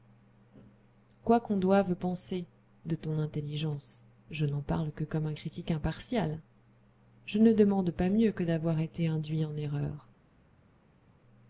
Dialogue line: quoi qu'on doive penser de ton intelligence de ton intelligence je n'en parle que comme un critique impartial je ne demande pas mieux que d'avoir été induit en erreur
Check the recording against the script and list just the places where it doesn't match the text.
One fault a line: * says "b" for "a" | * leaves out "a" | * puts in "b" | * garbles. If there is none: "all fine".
* leaves out "de ton intelligence"